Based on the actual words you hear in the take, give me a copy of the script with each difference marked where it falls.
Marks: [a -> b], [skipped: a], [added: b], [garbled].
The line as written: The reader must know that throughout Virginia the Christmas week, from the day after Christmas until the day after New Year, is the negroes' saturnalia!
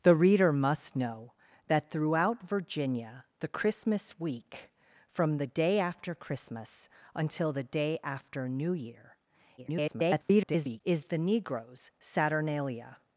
The reader must know that throughout Virginia the Christmas week, from the day after Christmas until the day after New Year, [garbled] is the negroes' saturnalia!